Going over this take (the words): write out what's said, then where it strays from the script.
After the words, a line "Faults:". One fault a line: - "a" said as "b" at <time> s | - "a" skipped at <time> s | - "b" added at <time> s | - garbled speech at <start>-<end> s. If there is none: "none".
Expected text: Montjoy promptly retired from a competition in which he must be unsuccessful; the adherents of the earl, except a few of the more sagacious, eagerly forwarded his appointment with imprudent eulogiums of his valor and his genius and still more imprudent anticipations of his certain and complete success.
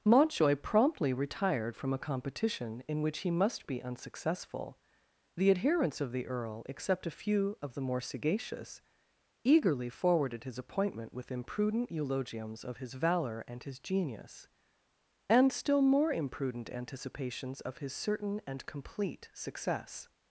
Montjoy promptly retired from a competition in which he must be unsuccessful; the adherents of the earl, except a few of the more sagacious, eagerly forwarded his appointment with imprudent eulogiums of his valor and his genius and still more imprudent anticipations of his certain and complete success.
Faults:
none